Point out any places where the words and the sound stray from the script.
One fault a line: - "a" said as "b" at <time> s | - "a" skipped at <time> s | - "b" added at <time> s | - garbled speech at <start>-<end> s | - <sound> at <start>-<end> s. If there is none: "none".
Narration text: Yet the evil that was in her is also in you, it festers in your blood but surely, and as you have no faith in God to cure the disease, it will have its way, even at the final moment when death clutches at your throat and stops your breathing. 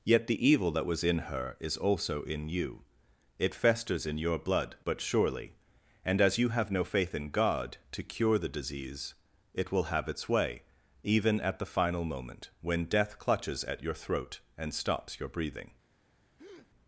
- breath at 16.4-16.7 s